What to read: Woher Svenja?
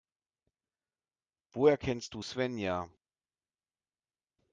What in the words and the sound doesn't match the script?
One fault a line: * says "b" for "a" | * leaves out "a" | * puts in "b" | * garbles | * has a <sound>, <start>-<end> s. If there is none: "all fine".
* puts in "kennst du"